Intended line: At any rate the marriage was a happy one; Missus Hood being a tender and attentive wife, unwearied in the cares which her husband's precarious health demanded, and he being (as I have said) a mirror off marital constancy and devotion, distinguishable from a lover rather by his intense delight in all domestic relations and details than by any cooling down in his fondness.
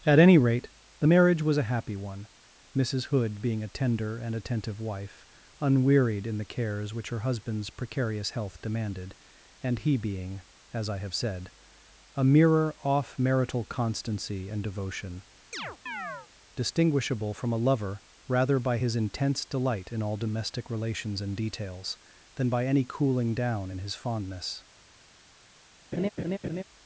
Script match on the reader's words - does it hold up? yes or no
yes